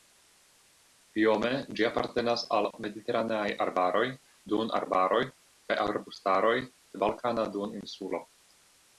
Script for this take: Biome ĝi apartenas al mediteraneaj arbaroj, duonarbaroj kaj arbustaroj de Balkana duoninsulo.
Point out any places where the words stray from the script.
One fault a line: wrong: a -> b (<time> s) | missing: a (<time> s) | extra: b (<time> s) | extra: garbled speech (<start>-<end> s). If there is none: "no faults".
no faults